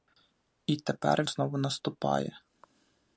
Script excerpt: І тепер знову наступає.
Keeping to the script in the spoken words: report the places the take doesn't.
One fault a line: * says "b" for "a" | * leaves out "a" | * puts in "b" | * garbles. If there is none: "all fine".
all fine